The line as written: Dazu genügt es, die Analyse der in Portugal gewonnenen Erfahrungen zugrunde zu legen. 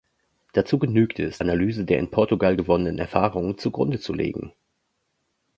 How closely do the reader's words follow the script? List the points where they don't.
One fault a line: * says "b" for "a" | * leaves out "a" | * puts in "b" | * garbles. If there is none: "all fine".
* leaves out "die"